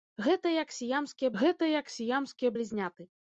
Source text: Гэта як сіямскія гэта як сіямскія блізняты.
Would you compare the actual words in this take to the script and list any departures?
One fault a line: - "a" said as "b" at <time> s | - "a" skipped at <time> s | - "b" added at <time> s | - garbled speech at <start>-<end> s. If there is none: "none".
none